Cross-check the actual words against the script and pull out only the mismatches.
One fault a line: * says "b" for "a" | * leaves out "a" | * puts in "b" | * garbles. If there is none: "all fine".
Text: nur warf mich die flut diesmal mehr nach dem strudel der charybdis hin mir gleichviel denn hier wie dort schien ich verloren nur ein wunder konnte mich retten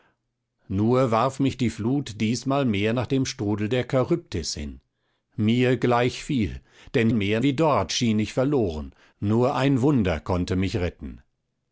* says "mehr" for "hier"